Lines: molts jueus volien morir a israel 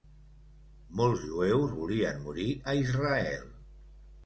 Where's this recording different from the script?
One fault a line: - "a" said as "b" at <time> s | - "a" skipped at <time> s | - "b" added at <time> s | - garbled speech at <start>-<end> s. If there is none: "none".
none